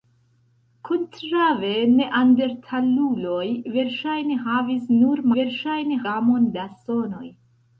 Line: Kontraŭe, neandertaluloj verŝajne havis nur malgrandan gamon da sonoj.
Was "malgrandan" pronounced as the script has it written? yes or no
no